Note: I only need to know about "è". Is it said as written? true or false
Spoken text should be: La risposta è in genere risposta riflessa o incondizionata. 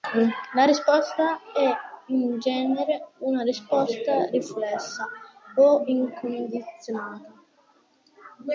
true